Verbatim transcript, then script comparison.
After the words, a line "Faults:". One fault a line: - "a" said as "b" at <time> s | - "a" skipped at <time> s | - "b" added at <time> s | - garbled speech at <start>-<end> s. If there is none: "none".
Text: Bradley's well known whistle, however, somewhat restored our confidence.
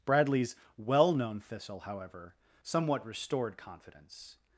Bradley's well known thistle, however, somewhat restored confidence.
Faults:
- "whistle" said as "thistle" at 1.4 s
- "our" skipped at 3.6 s